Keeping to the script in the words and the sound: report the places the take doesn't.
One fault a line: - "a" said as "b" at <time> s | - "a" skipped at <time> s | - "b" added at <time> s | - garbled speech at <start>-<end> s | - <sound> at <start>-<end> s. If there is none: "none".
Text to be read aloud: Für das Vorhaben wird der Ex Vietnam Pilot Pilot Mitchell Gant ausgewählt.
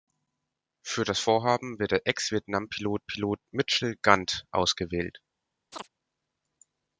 - chirp at 5.7-5.9 s